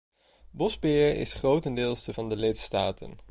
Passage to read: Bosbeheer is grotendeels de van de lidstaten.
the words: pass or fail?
pass